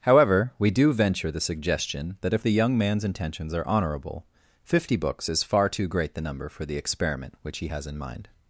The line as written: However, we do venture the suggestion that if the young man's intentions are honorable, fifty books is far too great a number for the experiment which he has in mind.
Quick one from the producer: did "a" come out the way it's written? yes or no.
no